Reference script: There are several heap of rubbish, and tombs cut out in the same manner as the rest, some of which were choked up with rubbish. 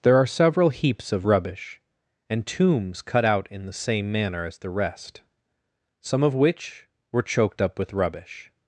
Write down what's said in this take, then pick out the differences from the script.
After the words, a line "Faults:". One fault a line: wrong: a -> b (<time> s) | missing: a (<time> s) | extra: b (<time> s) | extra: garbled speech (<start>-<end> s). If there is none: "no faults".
There are several heaps of rubbish, and tombs cut out in the same manner as the rest, some of which were choked up with rubbish.
Faults:
wrong: heap -> heaps (0.7 s)